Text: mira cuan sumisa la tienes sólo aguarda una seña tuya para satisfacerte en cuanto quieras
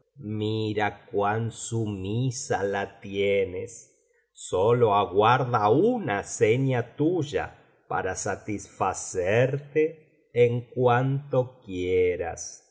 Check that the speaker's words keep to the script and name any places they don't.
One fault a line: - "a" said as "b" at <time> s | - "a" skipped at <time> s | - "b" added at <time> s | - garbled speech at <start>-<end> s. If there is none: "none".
none